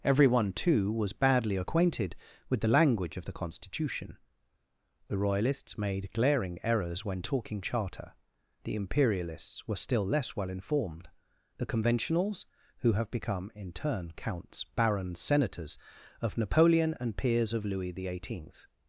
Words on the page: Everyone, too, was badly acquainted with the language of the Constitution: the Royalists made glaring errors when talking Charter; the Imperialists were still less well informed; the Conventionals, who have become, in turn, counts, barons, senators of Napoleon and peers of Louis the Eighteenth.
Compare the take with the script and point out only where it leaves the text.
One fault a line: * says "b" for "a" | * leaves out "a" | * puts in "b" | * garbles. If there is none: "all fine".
all fine